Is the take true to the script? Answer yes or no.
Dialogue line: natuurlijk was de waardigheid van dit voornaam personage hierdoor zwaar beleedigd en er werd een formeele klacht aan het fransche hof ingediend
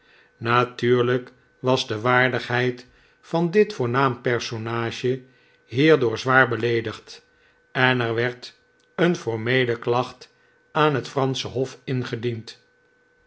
yes